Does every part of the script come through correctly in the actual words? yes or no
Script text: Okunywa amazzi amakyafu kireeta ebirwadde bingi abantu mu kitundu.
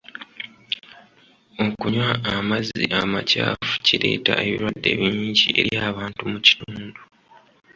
no